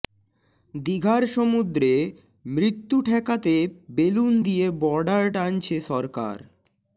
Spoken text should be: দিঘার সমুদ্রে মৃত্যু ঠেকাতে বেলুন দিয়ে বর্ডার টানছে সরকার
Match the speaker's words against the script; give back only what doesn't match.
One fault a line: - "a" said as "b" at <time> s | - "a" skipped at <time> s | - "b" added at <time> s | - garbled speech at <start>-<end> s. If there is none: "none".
none